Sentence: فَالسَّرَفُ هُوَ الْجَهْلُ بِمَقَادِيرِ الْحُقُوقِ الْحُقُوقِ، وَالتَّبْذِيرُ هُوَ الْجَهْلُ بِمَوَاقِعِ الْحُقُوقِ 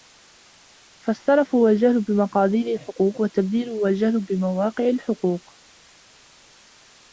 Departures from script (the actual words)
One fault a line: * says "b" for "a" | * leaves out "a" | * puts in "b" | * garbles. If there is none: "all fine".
* leaves out "الْحُقُوقِ"